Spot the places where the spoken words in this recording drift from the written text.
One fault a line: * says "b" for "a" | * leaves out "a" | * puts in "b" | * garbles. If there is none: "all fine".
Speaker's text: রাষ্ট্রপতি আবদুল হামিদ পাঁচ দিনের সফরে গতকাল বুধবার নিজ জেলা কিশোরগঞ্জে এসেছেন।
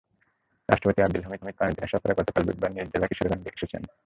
* puts in "হামিদ"